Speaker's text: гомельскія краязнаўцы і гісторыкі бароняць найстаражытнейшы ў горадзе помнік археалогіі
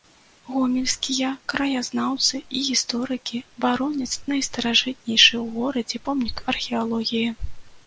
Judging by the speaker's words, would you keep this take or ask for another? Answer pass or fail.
pass